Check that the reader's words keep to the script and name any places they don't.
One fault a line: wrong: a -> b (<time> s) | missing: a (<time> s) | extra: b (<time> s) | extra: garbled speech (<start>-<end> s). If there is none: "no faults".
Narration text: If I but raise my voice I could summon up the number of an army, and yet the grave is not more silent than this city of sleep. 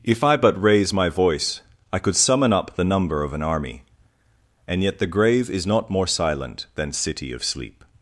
missing: this (6.9 s)